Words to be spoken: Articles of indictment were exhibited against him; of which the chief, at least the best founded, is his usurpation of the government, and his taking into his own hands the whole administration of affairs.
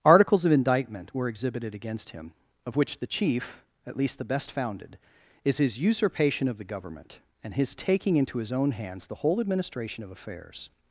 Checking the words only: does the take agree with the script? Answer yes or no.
yes